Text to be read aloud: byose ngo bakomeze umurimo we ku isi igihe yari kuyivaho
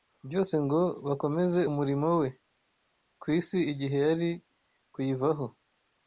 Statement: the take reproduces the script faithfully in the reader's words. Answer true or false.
true